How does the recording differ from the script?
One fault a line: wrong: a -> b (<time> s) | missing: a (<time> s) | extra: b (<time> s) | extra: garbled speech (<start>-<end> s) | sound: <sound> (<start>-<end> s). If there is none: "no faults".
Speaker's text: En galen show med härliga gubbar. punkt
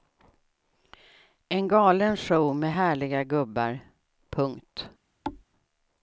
sound: thud (5.2-5.4 s)